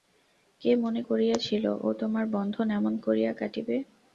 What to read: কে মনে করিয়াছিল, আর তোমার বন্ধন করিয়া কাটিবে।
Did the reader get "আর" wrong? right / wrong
wrong